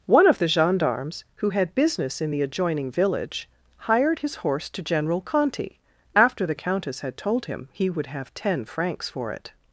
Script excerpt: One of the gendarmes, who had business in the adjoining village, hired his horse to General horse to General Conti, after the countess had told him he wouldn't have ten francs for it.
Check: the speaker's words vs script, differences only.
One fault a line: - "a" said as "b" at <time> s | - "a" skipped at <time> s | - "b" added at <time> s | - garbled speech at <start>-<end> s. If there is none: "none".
- "horse to General" skipped at 5.2 s
- "wouldn't" said as "would" at 7.9 s